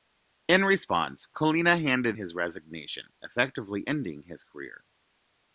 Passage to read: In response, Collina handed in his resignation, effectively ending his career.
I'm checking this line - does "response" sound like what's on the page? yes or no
yes